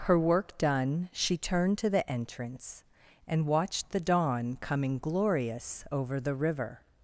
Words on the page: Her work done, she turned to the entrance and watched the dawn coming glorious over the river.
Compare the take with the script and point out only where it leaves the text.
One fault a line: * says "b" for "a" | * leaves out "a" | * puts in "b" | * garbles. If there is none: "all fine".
all fine